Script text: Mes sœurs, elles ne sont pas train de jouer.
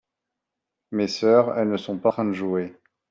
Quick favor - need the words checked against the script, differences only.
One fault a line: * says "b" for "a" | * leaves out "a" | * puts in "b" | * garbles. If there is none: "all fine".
all fine